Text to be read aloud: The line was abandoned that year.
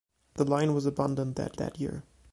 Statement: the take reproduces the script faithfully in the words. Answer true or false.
false